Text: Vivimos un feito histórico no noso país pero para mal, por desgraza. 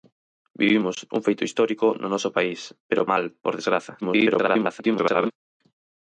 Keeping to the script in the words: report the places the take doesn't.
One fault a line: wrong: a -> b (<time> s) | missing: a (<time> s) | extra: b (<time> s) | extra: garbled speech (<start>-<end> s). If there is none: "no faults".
missing: para (3.1 s)
extra: garbled speech (4.0-5.3 s)